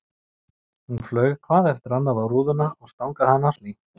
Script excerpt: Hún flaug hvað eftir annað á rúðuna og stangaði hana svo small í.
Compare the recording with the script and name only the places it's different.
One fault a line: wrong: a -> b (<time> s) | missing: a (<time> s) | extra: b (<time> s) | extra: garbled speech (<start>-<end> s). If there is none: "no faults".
missing: svo small (3.6 s)